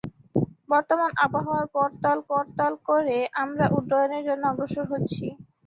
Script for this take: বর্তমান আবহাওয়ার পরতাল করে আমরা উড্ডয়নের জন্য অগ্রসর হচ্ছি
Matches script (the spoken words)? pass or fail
fail